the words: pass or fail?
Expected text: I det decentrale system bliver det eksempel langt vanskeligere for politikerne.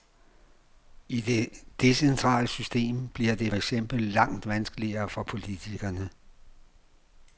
pass